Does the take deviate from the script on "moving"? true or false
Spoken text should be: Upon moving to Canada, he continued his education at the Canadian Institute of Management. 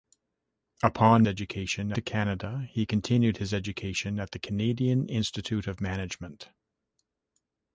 true